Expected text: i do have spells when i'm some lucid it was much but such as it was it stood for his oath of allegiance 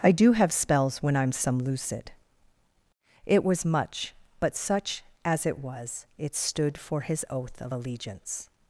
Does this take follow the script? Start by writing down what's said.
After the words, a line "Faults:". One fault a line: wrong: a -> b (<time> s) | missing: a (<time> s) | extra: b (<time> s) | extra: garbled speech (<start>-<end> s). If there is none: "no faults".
i do have spells when i'm some lucid it was much but such as it was it stood for his oath of allegiance
Faults:
no faults